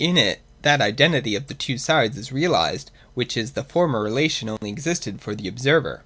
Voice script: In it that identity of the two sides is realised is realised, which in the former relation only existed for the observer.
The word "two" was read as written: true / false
true